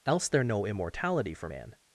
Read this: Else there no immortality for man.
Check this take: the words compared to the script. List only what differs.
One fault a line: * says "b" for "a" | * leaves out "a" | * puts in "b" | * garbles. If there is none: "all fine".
all fine